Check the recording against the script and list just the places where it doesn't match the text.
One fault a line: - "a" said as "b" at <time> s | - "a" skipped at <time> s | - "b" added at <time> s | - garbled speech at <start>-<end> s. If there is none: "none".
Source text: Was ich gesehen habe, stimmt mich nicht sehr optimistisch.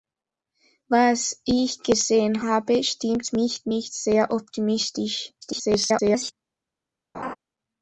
- garbled speech at 5.4-6.3 s